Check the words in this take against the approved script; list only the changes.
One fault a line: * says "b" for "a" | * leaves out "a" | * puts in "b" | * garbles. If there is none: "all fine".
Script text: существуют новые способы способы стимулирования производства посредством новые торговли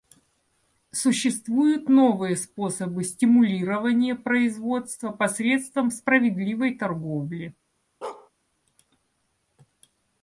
* leaves out "способы"
* says "справедливой" for "новые"